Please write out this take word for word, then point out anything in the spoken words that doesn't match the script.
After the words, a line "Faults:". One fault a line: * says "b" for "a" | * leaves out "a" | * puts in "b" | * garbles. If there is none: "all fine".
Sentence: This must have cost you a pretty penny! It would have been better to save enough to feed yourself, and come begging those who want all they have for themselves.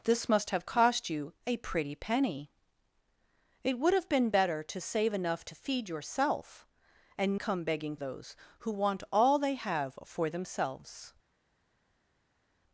This must have cost you a pretty penny! It would have been better to save enough to feed yourself, and come begging those who want all they have for themselves.
Faults:
all fine